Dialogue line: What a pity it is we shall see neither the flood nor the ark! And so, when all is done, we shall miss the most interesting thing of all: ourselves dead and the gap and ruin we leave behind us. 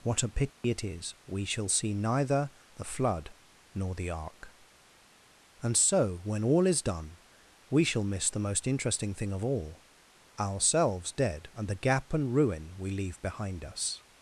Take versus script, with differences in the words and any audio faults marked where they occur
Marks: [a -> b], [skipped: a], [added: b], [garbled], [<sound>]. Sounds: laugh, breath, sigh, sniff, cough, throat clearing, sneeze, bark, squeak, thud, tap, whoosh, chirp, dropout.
What a pity [dropout] it is we shall see neither the flood nor the ark! And so, when all is done, we shall miss the most interesting thing of all: ourselves dead and the gap and ruin we leave behind us.